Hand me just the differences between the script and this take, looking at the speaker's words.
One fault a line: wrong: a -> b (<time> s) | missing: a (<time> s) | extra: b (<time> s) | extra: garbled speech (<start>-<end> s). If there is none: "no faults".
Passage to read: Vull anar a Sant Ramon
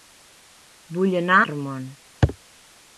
missing: a Sant (1.4 s)